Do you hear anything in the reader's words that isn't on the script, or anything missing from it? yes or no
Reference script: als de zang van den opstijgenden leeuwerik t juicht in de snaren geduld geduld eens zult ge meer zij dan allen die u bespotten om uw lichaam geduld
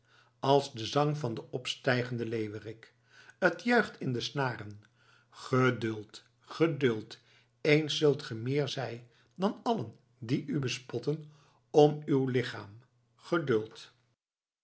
no